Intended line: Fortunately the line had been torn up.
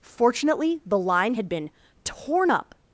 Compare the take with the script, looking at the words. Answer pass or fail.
pass